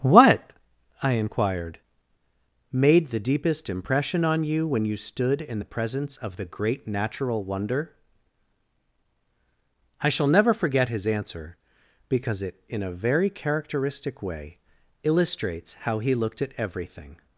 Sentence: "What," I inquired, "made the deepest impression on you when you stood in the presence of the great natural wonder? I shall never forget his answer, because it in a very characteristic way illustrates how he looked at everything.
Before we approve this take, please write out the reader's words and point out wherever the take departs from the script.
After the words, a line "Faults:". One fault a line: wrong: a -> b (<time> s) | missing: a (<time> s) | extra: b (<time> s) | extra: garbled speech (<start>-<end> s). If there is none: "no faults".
"What," I inquired, "made the deepest impression on you when you stood in the presence of the great natural wonder? I shall never forget his answer, because it in a very characteristic way illustrates how he looked at everything.
Faults:
no faults